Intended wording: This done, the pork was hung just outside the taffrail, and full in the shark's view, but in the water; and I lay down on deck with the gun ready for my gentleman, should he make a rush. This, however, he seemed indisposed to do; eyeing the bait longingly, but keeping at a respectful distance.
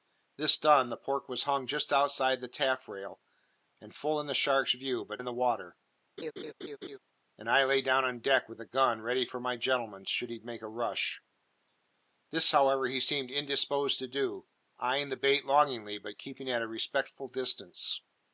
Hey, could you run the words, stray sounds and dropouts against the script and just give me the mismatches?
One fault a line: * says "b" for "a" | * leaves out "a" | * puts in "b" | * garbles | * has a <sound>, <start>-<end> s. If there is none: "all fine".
* has a laugh, 6.2-7.0 s